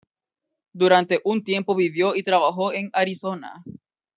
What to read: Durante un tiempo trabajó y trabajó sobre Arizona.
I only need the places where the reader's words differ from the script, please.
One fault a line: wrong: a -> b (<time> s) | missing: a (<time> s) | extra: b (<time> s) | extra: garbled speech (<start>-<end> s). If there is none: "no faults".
wrong: trabajó -> vivió (1.8 s)
wrong: sobre -> en (2.7 s)